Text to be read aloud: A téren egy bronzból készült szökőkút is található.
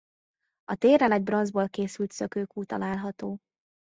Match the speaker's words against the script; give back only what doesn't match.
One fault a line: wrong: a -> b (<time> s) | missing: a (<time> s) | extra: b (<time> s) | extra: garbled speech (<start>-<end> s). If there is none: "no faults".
missing: is (2.7 s)